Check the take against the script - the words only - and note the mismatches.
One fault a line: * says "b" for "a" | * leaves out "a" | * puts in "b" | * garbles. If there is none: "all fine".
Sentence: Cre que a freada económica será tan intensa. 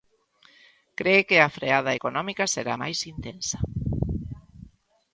* says "máis" for "tan"